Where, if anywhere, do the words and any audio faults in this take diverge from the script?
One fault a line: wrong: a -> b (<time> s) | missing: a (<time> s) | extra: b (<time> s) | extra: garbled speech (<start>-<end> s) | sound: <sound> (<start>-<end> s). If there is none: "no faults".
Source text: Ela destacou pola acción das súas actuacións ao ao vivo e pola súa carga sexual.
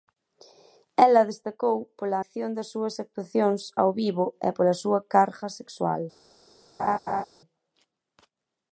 missing: ao (3.9 s)
sound: laugh (6.8-7.2 s)